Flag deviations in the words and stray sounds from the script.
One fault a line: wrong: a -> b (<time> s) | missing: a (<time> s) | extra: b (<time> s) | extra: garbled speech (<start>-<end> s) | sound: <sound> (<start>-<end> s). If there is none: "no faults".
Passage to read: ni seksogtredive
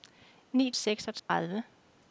sound: dropout (1.2-1.3 s)